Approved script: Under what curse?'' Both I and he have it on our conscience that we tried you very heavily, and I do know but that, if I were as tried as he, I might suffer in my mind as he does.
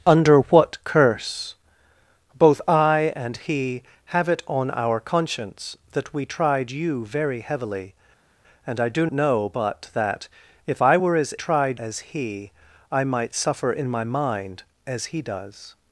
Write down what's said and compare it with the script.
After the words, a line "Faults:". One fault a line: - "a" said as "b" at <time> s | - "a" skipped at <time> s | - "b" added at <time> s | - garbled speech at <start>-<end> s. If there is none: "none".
Under what curse?'' Both I and he have it on our conscience that we tried you very heavily, and I do know but that, if I were as tried as he, I might suffer in my mind as he does.
Faults:
none